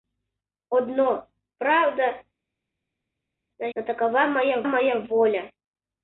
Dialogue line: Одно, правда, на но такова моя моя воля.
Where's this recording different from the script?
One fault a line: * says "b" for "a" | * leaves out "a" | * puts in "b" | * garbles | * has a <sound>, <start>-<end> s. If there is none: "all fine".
all fine